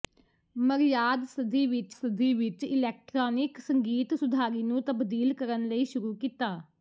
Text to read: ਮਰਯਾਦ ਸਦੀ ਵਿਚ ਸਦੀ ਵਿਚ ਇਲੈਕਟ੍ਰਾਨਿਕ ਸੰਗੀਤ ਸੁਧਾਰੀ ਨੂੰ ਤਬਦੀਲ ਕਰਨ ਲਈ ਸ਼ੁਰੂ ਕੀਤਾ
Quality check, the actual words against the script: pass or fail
pass